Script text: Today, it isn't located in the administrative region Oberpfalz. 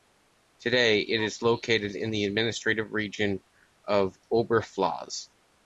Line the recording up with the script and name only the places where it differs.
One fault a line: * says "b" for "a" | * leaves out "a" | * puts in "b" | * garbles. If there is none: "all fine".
* says "is" for "isn't"
* puts in "of"